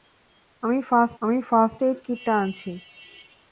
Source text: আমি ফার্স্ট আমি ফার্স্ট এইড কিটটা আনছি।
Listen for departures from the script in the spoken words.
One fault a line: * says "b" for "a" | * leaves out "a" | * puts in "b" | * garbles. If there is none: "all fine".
all fine